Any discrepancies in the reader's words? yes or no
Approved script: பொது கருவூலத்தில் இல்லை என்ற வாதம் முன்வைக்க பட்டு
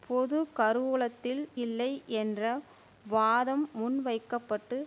no